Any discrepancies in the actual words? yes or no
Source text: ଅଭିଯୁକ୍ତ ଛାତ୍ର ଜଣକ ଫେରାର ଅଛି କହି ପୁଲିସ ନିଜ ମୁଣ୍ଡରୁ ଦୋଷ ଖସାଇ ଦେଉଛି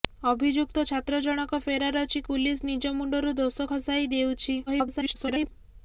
yes